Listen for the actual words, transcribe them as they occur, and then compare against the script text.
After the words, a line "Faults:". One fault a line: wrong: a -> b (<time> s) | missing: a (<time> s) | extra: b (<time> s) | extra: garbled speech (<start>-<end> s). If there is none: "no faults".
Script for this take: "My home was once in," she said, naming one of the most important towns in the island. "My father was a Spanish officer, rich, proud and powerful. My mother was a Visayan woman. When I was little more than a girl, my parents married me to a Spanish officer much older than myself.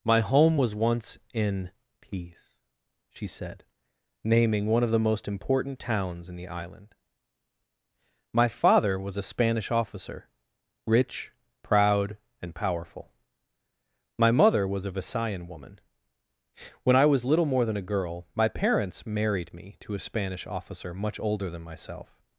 "My home was once in," peace she said, naming one of the most important towns in the island. "My father was a Spanish officer, rich, proud and powerful. My mother was a Visayan woman. When I was little more than a girl, my parents married me to a Spanish officer much older than myself.
Faults:
extra: peace (2.0 s)